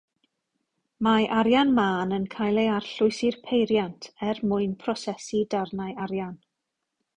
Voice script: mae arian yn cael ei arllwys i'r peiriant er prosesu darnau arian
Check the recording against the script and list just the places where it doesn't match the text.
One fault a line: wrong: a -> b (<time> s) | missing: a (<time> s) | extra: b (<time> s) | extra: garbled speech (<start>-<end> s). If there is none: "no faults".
extra: mân (1.8 s)
extra: mwyn (4.5 s)